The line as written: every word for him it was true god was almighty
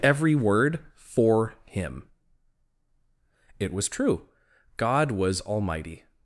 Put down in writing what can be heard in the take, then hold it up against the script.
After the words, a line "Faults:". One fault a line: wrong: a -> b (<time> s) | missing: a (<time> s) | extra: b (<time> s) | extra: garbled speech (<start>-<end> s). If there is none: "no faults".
every word for him it was true god was almighty
Faults:
no faults